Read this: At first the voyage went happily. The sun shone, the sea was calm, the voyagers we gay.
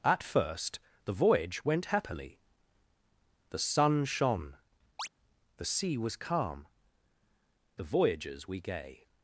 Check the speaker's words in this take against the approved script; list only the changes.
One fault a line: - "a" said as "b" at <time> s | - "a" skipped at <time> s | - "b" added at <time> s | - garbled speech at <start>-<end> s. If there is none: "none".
none